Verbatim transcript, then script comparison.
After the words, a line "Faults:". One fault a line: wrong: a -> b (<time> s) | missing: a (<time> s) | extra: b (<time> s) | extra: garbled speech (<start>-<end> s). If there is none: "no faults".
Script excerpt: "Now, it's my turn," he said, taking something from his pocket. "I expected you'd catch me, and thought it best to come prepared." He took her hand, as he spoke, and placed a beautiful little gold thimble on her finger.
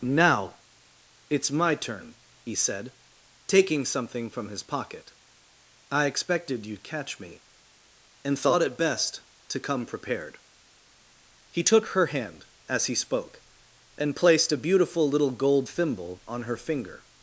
"Now, it's my turn," he said, taking something from his pocket. "I expected you'd catch me, and thought it best to come prepared." He took her hand, as he spoke, and placed a beautiful little gold thimble on her finger.
Faults:
no faults